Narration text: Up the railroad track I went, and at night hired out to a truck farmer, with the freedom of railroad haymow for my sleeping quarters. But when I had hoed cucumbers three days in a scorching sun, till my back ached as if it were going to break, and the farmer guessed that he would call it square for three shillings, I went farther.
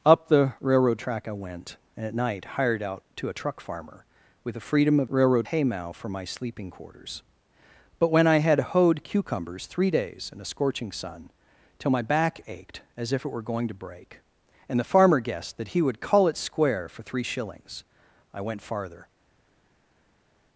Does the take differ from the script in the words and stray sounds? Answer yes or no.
no